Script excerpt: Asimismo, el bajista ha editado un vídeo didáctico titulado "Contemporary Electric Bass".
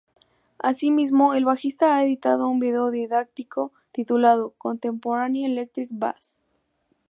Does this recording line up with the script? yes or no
yes